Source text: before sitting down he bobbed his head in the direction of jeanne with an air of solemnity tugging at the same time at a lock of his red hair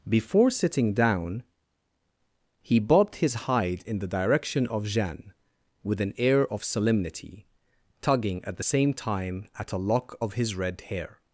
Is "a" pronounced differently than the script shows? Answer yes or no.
no